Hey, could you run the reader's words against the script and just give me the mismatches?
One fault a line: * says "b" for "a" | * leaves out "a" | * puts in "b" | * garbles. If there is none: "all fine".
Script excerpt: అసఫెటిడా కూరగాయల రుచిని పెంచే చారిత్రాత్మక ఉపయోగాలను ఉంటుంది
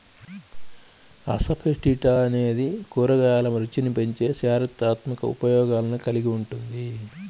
* puts in "అనేది"
* puts in "కలిగి"